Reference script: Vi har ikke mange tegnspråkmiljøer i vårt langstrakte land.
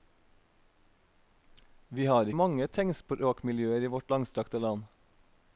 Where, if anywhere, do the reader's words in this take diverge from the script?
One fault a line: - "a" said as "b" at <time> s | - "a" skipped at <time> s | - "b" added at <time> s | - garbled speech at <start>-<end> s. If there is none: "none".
- "ikke" skipped at 2.3 s